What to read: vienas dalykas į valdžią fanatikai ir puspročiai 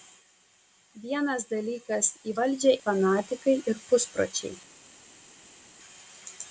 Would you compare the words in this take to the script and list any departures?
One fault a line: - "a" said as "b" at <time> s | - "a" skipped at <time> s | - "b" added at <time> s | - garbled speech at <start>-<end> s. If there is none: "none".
none